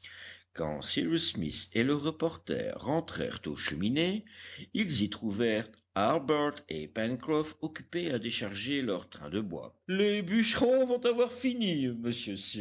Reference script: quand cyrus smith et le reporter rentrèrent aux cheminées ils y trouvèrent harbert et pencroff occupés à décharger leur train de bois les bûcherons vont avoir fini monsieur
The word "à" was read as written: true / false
true